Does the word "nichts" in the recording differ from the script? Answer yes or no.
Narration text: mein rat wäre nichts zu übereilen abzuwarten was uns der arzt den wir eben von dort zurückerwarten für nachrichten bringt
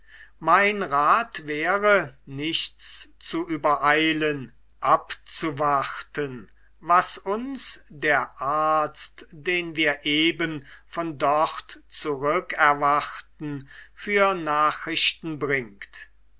no